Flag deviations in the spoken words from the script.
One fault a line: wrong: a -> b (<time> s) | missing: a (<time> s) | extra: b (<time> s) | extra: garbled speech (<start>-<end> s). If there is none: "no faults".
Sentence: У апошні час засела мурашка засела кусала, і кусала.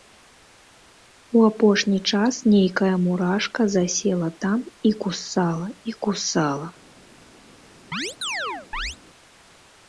wrong: засела -> нейкая (2.5 s)
extra: там і (4.5 s)